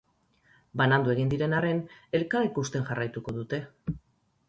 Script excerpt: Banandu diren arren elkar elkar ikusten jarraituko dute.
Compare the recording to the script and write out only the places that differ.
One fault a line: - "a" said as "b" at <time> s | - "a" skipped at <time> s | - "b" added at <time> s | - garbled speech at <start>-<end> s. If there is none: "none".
- "egin" added at 1.1 s
- "elkar" skipped at 2.5 s